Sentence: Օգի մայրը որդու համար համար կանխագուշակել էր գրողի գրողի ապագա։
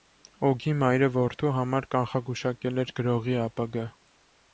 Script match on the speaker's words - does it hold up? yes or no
no